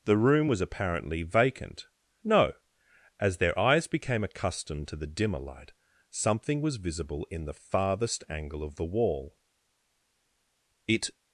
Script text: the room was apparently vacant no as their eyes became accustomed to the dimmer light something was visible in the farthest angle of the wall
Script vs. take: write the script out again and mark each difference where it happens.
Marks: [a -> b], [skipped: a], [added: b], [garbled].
the room was apparently vacant no as their eyes became accustomed to the dimmer light something was visible in the farthest angle of the wall [added: it]